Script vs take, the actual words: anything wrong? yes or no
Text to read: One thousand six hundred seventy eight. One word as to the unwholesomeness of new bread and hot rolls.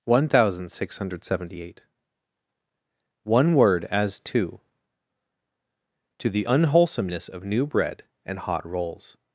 yes